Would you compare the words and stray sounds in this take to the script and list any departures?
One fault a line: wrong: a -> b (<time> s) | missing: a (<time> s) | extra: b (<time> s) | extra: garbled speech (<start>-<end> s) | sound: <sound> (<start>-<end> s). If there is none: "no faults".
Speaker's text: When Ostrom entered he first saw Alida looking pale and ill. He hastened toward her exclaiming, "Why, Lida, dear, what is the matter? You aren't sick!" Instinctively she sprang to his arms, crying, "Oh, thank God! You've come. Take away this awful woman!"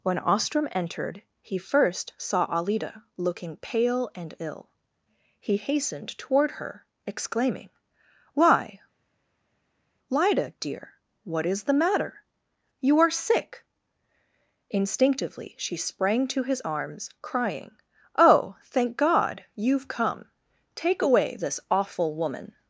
wrong: aren't -> are (13.0 s)